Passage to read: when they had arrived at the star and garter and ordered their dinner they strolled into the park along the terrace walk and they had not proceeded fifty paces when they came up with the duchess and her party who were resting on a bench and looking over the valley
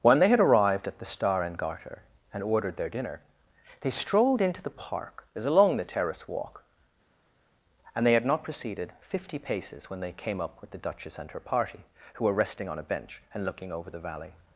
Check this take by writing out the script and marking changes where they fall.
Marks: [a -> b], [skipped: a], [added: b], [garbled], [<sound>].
when they had arrived at the star and garter and ordered their dinner they strolled into the park [added: as] along the terrace walk and they had not proceeded fifty paces when they came up with the duchess and her party who were resting on a bench and looking over the valley